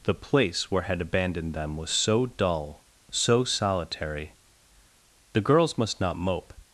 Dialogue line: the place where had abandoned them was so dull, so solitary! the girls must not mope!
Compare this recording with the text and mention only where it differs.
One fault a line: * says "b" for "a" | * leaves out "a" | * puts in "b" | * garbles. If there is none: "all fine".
all fine